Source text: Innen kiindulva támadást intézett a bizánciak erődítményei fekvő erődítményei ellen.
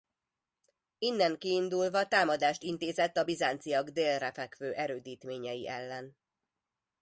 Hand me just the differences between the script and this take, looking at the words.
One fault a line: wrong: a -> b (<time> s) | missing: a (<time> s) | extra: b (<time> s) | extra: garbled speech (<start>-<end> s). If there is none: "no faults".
wrong: erődítményei -> délre (3.9 s)